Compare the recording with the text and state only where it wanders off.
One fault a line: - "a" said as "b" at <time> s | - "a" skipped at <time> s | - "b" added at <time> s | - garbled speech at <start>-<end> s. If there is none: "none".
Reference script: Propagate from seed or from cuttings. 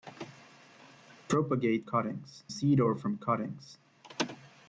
- "from" said as "cuttings" at 1.8 s